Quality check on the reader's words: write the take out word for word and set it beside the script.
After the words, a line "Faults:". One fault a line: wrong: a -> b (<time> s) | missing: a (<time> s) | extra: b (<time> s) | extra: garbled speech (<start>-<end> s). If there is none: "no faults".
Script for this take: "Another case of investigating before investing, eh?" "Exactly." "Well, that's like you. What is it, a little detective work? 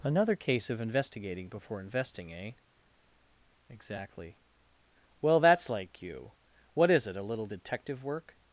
"Another case of investigating before investing, eh?" "Exactly." "Well, that's like you. What is it, a little detective work?
Faults:
no faults